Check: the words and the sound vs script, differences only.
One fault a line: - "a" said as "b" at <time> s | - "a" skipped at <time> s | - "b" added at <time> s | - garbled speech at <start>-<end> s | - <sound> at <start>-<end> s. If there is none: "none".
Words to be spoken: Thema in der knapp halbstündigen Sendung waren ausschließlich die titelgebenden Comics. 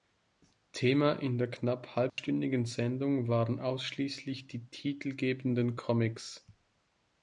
- dropout at 2.1-2.2 s